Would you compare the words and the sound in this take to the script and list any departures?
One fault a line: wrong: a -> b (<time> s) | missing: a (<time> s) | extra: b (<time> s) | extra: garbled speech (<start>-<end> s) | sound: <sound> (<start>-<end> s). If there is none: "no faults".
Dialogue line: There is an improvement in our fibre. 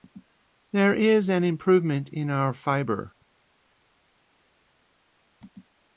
no faults